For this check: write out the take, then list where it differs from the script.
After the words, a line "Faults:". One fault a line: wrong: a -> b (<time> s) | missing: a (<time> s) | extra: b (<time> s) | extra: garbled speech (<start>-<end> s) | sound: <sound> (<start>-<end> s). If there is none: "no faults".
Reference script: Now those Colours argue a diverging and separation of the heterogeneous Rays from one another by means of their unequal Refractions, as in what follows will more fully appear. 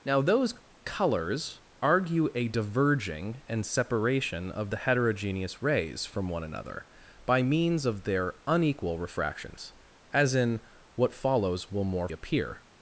Now those Colours argue a diverging and separation of the heterogeneous Rays from one another by means of their unequal Refractions, as in what follows will more appear.
Faults:
missing: fully (12.1 s)